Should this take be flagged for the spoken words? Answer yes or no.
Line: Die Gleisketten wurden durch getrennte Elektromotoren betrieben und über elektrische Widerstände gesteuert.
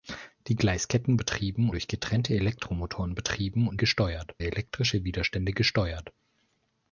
yes